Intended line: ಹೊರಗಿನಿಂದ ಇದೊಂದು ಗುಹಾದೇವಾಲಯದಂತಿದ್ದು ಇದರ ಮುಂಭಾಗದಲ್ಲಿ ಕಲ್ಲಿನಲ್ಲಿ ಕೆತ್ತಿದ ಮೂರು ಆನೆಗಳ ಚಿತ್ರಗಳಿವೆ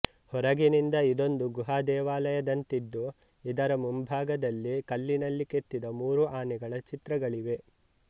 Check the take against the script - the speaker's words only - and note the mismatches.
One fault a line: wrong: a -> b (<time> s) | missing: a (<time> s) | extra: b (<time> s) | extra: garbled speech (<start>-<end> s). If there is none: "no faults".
no faults